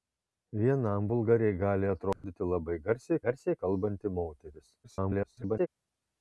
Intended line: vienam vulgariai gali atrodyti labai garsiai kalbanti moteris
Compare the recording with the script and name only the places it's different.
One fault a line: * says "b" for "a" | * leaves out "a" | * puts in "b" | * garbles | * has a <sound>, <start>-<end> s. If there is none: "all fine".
* has a dropout, 2.1-2.2 s
* puts in "garsiai"
* garbles